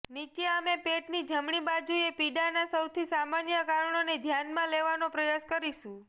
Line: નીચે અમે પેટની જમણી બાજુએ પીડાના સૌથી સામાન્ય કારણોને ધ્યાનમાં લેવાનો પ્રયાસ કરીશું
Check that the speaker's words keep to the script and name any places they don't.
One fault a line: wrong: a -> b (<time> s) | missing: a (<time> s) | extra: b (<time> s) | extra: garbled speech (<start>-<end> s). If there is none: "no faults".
no faults